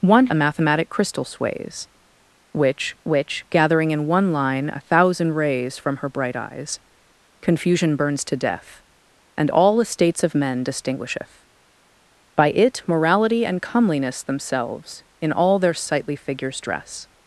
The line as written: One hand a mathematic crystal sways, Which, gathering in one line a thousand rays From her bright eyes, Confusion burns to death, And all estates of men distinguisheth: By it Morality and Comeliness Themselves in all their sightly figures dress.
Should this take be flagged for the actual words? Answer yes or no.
yes